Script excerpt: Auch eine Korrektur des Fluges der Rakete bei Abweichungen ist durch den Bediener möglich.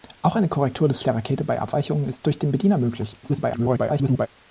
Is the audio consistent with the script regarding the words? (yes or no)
no